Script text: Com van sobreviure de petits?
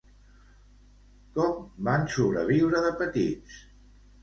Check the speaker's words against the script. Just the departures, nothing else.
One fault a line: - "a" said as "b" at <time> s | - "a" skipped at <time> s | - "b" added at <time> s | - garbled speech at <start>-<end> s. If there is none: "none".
none